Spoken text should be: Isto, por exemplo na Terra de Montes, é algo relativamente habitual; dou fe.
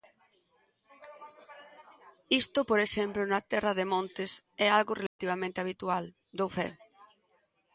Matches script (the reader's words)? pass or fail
pass